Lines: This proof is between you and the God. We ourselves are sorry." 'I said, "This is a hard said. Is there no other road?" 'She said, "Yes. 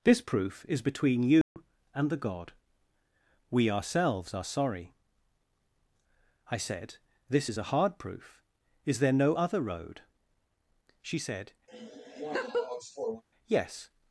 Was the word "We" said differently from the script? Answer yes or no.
no